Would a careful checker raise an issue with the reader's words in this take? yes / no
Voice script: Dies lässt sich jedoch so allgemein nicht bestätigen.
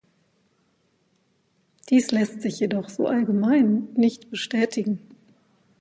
no